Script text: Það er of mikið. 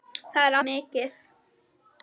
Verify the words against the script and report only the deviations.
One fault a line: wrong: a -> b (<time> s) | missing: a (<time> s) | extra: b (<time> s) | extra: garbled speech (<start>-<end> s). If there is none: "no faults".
no faults